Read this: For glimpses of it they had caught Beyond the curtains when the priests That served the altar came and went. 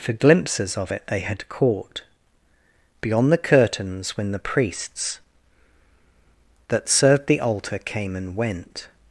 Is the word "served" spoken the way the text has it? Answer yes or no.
yes